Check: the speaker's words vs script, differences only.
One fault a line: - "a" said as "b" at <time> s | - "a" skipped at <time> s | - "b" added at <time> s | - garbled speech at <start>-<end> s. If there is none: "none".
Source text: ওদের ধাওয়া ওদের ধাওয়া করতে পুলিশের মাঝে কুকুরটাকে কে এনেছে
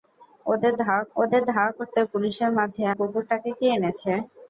none